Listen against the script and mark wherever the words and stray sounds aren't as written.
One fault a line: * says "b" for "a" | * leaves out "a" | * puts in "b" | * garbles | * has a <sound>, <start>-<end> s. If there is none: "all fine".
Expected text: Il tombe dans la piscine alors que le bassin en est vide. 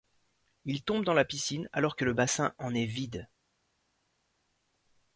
all fine